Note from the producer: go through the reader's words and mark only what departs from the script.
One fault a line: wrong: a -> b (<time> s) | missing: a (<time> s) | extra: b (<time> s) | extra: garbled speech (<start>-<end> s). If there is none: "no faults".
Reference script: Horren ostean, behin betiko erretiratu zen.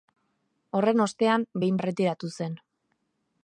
missing: betiko (1.8 s)